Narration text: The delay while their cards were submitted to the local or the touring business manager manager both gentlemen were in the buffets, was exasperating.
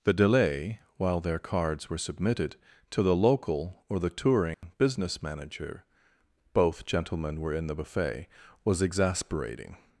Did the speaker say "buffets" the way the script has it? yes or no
no